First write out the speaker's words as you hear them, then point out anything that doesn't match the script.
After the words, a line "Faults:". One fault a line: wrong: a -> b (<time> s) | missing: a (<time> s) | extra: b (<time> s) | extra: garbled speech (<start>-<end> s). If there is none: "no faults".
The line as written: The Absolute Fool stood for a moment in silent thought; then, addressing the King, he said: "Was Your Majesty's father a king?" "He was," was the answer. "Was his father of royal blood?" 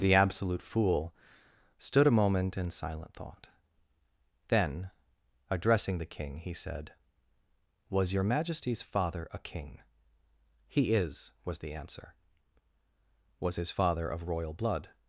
The Absolute Fool stood a moment in silent thought; then, addressing the King, he said: "Was Your Majesty's father a king?" "He is," was the answer. "Was his father of royal blood?"
Faults:
missing: for (2.1 s)
wrong: was -> is (10.9 s)